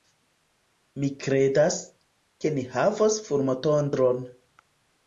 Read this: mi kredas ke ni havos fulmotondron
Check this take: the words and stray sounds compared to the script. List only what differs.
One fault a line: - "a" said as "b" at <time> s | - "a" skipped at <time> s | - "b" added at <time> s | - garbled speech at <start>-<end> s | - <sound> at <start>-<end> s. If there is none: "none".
none